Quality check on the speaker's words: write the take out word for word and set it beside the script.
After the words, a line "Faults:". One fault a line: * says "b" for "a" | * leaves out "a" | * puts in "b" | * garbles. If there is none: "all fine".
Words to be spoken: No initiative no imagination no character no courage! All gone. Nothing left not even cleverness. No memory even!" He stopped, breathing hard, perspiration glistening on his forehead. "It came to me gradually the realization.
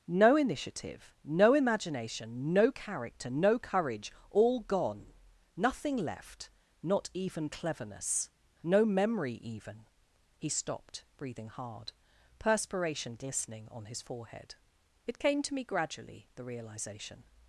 No initiative no imagination no character no courage! All gone. Nothing left not even cleverness. No memory even!" He stopped, breathing hard, perspiration glistening on his forehead. "It came to me gradually the realization.
Faults:
all fine